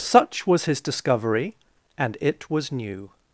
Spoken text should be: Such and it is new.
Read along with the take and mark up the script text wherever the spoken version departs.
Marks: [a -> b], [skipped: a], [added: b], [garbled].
Such [added: was his discovery] and it [is -> was] new.